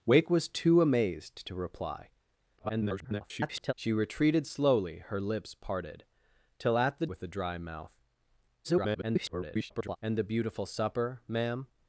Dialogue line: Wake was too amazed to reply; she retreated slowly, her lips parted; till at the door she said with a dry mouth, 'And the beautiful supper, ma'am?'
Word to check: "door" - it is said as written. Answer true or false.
false